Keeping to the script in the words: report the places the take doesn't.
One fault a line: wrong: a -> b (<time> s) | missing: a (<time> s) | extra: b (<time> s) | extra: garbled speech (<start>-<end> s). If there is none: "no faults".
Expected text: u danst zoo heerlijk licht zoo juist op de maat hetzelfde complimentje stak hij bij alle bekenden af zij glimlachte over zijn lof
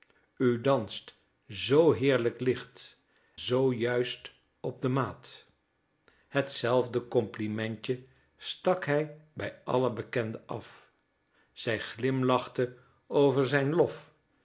no faults